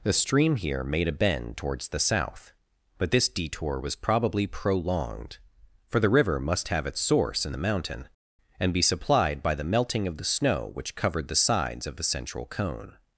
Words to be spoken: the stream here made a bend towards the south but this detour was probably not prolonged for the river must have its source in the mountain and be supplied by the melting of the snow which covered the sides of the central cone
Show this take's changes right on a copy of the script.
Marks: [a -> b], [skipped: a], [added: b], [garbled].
the stream here made a bend towards the south but this detour was probably [skipped: not] prolonged for the river must have its source in the mountain and be supplied by the melting of the snow which covered the sides of the central cone